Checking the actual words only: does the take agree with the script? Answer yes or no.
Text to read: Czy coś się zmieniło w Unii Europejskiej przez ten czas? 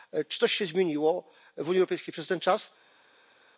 yes